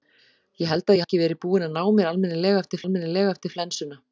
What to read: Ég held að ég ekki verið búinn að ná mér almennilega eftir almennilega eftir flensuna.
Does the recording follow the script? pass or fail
pass